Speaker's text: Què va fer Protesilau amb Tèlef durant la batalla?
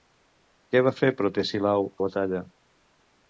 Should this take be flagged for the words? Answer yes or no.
yes